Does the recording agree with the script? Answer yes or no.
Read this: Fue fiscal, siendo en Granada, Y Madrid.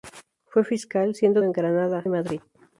yes